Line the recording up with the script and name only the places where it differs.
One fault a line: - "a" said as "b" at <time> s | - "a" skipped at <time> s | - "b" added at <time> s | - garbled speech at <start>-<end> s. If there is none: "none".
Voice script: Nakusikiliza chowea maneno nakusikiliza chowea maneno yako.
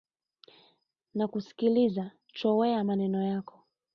- "nakusikiliza chowea maneno" skipped at 3.2 s